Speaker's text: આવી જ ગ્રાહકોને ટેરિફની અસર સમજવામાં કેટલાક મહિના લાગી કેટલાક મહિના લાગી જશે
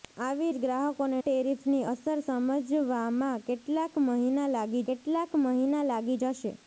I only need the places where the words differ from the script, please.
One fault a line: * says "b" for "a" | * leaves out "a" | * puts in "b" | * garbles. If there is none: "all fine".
all fine